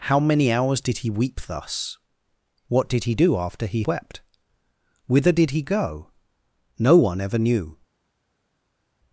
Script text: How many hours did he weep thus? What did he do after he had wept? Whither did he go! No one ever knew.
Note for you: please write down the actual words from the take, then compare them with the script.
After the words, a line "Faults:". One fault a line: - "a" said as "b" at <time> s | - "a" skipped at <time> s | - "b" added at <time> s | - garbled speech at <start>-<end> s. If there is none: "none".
How many hours did he weep thus? What did he do after he wept? Whither did he go! No one ever knew.
Faults:
- "had" skipped at 3.8 s